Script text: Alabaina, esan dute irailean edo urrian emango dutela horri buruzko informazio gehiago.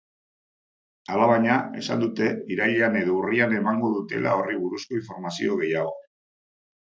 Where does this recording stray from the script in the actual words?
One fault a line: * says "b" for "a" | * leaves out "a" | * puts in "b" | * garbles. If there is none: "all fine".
all fine